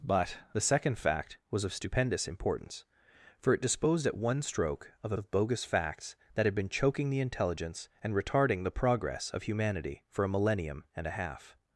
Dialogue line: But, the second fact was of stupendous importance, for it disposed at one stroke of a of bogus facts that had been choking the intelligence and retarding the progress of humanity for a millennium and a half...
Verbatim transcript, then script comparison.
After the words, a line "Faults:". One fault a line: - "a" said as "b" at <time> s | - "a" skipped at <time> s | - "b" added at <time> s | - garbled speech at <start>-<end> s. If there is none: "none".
But, the second fact was of stupendous importance, for it disposed at one stroke of a of bogus facts that had been choking the intelligence and retarding the progress of humanity for a millennium and a half...
Faults:
none